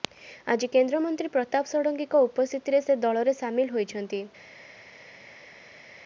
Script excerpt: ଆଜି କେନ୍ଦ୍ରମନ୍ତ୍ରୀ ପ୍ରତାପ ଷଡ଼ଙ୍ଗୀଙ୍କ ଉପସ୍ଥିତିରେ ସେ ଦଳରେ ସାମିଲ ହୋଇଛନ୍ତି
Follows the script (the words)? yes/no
yes